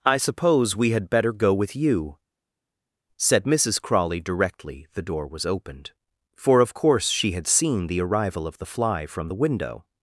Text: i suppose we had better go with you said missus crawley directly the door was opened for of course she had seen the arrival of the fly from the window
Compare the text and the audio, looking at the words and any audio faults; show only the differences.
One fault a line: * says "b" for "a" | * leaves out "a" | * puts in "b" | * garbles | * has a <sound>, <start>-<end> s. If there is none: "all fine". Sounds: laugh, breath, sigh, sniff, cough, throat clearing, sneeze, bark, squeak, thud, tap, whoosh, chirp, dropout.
all fine